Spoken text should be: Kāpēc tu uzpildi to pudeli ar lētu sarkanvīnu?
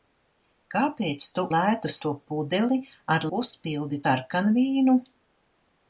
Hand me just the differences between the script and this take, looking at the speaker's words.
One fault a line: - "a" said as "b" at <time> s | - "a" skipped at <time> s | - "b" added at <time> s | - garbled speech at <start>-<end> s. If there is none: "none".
- "uzpildi" said as "lētu" at 1.6 s
- "lētu" said as "uzpildi" at 3.4 s